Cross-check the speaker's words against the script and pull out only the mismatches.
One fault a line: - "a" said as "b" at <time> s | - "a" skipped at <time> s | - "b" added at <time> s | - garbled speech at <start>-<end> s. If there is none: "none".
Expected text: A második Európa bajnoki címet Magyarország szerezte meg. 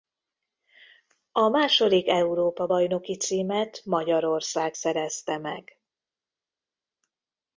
none